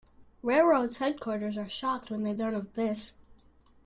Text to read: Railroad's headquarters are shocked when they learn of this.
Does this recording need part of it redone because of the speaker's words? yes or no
no